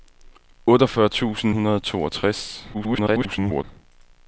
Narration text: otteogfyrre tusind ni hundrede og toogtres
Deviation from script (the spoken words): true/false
true